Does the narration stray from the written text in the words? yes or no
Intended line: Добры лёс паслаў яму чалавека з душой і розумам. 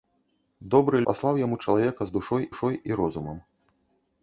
yes